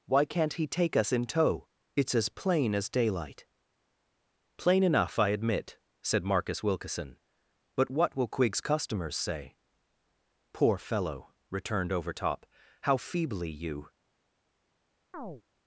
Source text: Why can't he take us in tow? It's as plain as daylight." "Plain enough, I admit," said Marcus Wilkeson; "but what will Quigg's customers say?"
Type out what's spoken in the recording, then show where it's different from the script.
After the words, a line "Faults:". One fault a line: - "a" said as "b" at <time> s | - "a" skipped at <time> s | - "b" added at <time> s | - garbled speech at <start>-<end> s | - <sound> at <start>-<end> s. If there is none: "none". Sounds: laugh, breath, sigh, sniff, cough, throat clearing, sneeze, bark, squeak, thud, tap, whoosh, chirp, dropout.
Why can't he take us in tow? It's as plain as daylight." "Plain enough, I admit," said Marcus Wilkeson; "but what will Quigg's customers say?" "Poor fellow!" returned Overtop. "How feebly you
Faults:
- "Poor fellow returned Overtop How feebly you" added at 10.5 s
- chirp at 15.1-15.4 s